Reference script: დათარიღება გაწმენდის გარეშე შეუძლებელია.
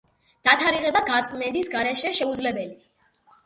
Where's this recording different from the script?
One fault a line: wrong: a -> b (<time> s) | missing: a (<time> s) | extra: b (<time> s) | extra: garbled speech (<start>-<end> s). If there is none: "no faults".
no faults